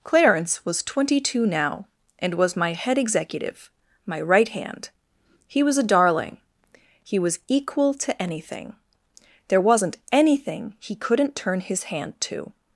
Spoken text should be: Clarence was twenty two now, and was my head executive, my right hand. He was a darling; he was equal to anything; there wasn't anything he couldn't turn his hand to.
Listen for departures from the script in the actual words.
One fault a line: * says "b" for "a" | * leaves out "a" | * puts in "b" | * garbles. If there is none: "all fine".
all fine